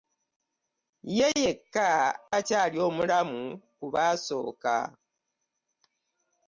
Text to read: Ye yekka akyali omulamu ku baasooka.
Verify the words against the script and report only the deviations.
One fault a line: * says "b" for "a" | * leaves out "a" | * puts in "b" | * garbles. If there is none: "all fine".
all fine